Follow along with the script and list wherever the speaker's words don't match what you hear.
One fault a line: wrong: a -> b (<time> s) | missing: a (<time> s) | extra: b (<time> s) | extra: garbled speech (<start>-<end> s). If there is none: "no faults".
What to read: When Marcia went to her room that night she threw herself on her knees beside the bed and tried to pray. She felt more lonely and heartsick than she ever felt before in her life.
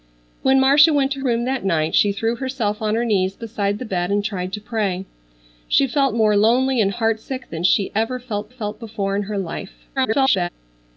missing: her (1.2 s)
extra: felt (8.5 s)
extra: garbled speech (10.0-10.5 s)